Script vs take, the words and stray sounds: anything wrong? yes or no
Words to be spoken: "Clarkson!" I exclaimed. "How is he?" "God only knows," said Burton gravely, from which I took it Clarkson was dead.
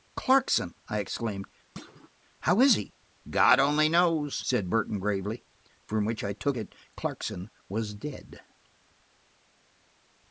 yes